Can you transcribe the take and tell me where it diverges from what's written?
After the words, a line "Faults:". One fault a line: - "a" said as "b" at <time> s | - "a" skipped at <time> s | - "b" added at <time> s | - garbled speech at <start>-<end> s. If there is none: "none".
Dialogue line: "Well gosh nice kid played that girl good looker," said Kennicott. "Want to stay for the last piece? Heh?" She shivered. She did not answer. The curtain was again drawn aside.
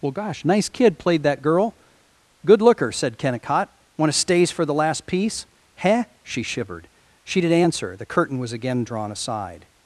"Well gosh nice kid played that girl good looker," said Kennicott. "Want to stays for the last piece? Heh?" She shivered. She did answer. The curtain was again drawn aside.
Faults:
- "stay" said as "stays" at 4.2 s
- "not" skipped at 7.5 s